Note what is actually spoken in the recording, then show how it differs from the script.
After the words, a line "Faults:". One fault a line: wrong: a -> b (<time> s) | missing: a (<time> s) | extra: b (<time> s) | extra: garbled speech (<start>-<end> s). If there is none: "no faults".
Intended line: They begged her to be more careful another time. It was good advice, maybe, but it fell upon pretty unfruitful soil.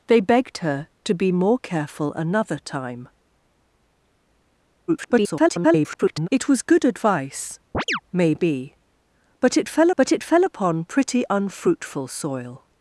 They begged her to be more careful another time. [garbled] It was good advice, maybe, but it fell but it fell upon pretty unfruitful soil.
Faults:
extra: garbled speech (4.9-6.3 s)
extra: but it fell (10.0 s)